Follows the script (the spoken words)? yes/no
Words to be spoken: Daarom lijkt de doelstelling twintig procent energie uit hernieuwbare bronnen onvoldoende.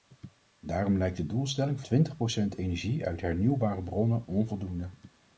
yes